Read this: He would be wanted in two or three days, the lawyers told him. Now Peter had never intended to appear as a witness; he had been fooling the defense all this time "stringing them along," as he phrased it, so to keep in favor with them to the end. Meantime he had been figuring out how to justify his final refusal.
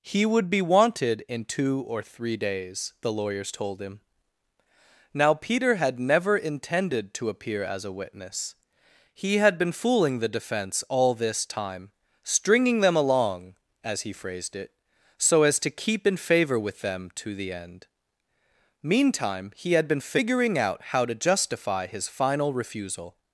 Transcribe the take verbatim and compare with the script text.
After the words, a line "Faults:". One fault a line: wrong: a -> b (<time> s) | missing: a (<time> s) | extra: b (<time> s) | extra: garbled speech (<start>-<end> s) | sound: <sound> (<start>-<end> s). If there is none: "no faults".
He would be wanted in two or three days, the lawyers told him. Now Peter had never intended to appear as a witness; he had been fooling the defense all this time "stringing them along," as he phrased it, so as to keep in favor with them to the end. Meantime he had been figuring out how to justify his final refusal.
Faults:
extra: as (15.4 s)